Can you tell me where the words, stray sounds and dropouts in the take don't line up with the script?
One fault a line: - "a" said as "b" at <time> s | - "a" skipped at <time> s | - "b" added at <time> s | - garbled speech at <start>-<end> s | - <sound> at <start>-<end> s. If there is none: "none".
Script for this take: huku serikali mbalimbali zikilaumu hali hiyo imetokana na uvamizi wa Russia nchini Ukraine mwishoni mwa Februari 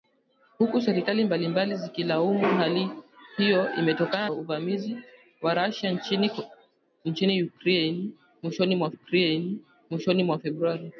- "na" skipped at 4.3 s
- "Ukraine mwishoni mwa" added at 8.9 s